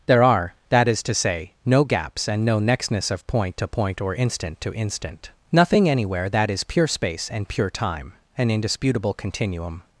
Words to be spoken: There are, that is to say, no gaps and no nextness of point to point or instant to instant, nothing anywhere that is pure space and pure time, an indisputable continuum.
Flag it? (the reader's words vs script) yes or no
no